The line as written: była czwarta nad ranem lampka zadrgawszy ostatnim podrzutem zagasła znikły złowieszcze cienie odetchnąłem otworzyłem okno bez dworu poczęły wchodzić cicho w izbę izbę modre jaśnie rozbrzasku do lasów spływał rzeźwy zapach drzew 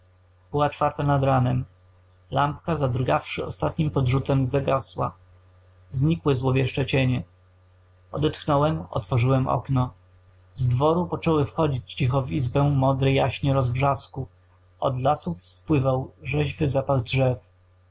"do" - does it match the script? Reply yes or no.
no